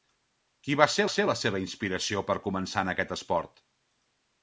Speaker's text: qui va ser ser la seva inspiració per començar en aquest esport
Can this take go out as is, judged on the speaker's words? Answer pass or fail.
pass